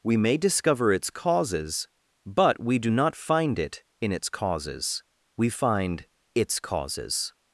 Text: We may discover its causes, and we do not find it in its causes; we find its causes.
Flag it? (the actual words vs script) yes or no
yes